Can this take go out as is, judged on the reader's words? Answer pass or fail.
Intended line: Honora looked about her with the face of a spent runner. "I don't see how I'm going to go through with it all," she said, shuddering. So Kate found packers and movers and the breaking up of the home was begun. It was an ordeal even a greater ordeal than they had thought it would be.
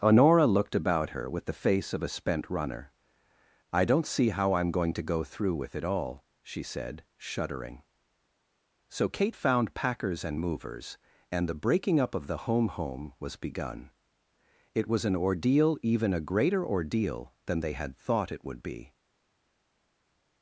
fail